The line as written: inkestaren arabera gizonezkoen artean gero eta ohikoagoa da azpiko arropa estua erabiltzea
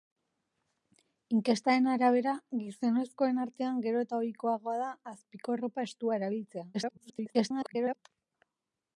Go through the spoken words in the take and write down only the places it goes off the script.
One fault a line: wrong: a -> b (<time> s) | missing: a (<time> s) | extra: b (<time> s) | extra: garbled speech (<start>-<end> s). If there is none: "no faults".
extra: garbled speech (6.7-8.0 s)